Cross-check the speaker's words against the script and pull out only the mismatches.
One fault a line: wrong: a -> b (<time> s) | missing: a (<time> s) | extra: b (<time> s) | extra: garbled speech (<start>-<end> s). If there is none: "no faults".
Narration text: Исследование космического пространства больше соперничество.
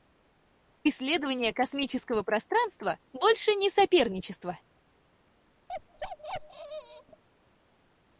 extra: не (3.5 s)